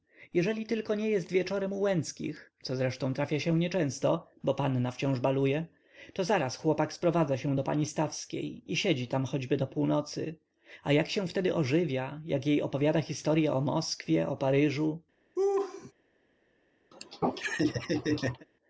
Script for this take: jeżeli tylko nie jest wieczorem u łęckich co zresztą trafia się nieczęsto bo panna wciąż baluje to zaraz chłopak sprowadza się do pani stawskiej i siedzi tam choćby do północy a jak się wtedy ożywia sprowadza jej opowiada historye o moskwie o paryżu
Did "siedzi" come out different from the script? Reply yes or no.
no